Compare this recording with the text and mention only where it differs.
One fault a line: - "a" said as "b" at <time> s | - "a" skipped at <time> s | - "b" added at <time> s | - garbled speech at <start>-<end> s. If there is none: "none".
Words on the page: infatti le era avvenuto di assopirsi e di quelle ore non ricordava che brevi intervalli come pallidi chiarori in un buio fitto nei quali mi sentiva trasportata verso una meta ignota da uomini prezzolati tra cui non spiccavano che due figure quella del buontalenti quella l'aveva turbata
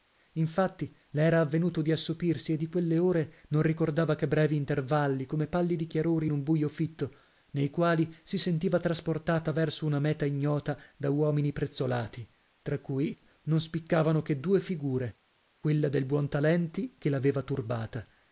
- "mi" said as "si" at 8.2 s
- "quella" said as "che" at 17.0 s